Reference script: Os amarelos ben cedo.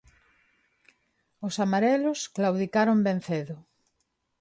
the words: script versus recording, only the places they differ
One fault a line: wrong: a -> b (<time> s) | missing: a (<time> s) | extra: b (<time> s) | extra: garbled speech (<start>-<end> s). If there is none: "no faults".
extra: claudicaron (2.4 s)